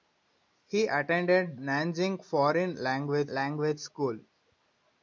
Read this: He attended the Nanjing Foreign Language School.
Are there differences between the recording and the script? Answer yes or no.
yes